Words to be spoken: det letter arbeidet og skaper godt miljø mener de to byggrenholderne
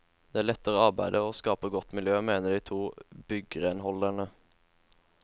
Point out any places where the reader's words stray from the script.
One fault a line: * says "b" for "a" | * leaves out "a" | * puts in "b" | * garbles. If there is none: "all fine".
all fine